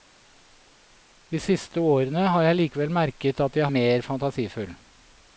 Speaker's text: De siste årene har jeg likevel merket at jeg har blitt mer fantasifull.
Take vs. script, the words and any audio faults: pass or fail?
fail